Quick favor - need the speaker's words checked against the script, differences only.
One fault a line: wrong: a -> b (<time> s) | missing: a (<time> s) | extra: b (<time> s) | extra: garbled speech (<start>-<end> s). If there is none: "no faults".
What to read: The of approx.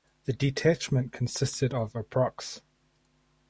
extra: detachment consisted (0.3 s)